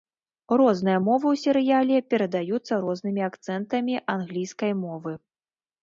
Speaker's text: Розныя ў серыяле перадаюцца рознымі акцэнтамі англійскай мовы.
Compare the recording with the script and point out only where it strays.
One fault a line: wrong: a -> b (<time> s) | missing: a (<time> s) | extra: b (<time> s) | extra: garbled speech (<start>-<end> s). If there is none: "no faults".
extra: мовы (1.1 s)